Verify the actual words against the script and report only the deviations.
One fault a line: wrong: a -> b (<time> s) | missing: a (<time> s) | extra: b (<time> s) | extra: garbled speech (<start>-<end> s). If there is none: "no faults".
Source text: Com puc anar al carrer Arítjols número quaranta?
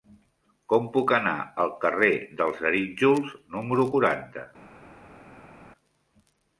extra: dels (2.4 s)